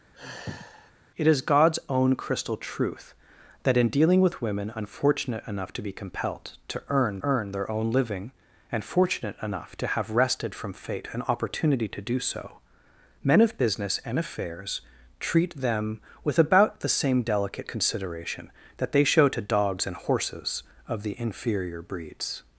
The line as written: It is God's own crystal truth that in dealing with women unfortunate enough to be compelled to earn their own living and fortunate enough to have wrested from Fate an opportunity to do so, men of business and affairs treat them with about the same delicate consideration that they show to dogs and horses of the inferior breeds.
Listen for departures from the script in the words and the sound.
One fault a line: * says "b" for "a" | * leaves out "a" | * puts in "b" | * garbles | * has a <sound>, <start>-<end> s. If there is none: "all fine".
* has a sigh, 0.1-0.9 s
* puts in "earn"